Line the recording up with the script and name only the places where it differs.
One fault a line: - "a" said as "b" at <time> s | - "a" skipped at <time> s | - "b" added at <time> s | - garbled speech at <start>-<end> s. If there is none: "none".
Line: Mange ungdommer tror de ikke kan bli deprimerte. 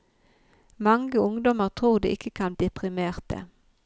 - "bli" skipped at 2.5 s